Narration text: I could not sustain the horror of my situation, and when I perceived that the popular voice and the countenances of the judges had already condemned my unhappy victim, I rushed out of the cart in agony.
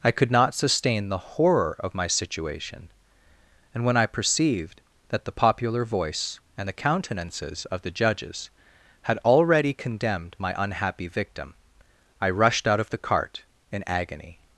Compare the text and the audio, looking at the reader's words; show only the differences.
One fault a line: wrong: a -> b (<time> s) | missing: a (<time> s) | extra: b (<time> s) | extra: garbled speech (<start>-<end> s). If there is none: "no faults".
no faults